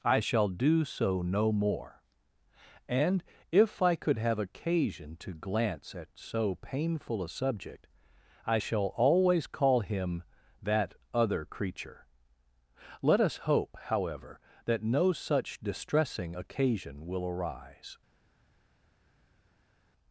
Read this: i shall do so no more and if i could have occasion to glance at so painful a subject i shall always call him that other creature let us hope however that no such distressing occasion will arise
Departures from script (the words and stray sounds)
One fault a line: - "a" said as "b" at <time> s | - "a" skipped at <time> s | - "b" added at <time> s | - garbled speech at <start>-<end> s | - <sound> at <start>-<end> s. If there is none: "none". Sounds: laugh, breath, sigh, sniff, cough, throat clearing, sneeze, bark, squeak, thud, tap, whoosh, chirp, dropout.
none